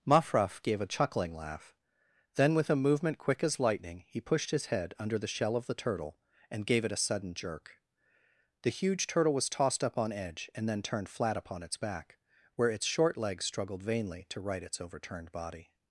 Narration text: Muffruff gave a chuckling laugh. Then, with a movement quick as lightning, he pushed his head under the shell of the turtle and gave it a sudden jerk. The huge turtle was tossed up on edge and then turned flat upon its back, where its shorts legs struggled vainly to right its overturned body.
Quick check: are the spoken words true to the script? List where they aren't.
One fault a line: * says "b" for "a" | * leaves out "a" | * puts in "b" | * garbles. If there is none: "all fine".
* says "short" for "shorts"